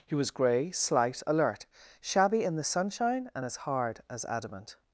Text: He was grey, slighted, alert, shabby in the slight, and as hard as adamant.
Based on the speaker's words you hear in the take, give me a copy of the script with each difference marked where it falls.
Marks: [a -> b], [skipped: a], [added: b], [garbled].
He was grey, [slighted, -> slight] alert, shabby in the [slight, -> sunshine] and as hard as adamant.